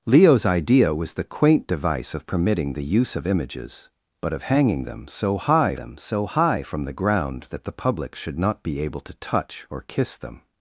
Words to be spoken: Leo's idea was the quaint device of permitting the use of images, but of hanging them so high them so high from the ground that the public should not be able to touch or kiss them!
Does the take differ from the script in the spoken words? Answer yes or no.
no